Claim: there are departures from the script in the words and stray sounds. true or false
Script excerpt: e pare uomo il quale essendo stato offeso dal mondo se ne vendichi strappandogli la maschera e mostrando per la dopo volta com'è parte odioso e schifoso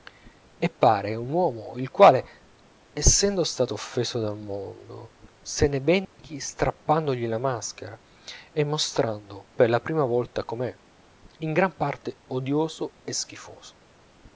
true